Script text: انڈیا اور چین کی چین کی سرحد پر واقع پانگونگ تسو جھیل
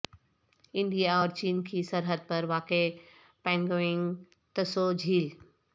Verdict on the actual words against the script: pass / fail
fail